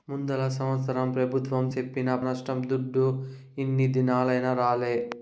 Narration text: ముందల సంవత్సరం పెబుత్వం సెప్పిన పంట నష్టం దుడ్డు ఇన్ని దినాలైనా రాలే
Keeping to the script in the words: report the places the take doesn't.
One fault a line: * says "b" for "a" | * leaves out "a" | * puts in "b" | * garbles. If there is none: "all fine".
* leaves out "పంట"